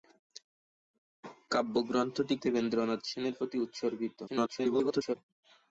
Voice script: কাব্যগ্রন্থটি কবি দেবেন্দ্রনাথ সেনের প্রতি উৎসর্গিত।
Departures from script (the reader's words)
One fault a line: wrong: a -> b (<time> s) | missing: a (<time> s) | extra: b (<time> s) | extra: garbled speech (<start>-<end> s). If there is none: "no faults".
missing: কবি (2.4 s)
extra: garbled speech (4.3-5.2 s)